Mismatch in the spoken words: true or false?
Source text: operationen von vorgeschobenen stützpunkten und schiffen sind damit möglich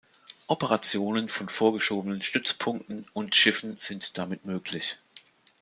false